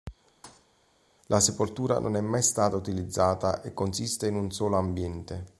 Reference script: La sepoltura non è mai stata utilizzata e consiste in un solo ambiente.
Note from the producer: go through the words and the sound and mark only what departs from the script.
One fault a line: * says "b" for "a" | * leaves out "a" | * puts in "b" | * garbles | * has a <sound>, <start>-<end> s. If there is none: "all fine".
* has a thud, 0.4-0.7 s